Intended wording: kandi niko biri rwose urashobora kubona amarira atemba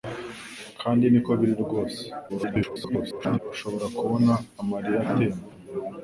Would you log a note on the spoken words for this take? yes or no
yes